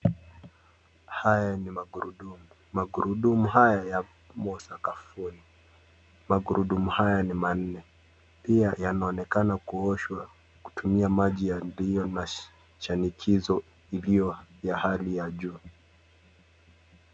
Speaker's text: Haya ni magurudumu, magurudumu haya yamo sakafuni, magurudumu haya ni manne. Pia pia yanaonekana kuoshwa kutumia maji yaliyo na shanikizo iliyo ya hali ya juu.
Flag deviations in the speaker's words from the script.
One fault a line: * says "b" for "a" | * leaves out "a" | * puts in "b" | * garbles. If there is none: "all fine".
* leaves out "pia"